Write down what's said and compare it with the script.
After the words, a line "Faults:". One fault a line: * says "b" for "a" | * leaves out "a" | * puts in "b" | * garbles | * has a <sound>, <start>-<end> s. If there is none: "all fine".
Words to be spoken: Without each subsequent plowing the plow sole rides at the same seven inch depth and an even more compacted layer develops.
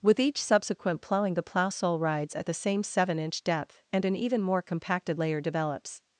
With each subsequent plowing the plow sole rides at the same seven inch depth and an even more compacted layer develops.
Faults:
* says "With" for "Without"